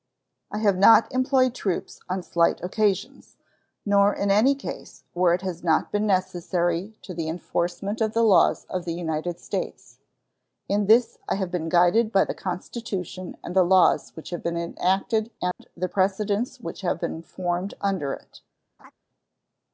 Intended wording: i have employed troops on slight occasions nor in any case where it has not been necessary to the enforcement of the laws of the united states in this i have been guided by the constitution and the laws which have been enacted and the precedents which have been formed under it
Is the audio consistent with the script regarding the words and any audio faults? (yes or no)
no